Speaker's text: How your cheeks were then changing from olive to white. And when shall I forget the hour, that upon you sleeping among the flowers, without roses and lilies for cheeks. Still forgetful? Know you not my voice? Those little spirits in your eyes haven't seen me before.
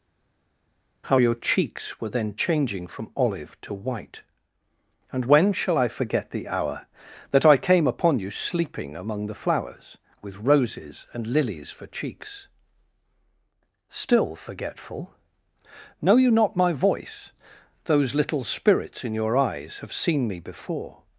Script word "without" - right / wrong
wrong